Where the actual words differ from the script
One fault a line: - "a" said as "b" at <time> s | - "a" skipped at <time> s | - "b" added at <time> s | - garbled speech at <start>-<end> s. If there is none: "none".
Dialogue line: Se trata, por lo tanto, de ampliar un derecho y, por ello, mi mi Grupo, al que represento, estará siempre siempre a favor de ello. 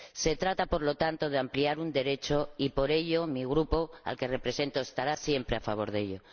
- "mi" skipped at 3.5 s
- "siempre" skipped at 5.6 s